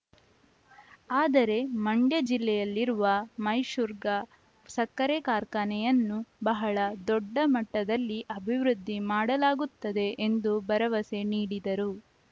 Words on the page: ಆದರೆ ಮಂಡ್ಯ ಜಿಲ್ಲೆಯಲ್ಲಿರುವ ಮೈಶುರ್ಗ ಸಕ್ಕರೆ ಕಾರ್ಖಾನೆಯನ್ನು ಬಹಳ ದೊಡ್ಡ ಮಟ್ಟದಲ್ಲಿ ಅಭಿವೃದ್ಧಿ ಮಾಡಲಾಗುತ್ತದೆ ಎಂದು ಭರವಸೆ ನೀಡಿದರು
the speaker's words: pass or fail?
pass